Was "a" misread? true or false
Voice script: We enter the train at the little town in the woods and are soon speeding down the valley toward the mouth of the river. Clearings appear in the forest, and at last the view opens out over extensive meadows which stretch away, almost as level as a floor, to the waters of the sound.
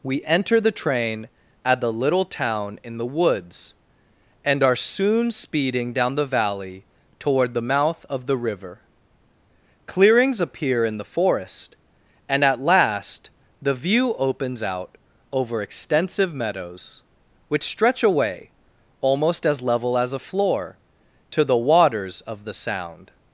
false